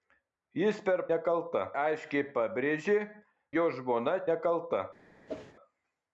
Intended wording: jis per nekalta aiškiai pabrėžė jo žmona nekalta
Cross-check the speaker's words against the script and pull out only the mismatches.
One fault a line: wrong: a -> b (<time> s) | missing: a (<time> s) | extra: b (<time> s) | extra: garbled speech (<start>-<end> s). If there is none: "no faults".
no faults